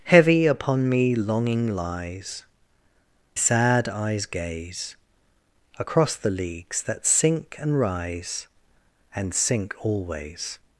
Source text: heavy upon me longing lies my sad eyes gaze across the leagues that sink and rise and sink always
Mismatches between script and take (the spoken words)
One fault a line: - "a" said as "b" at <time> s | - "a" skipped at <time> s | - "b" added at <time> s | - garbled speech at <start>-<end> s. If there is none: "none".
- "my" skipped at 2.4 s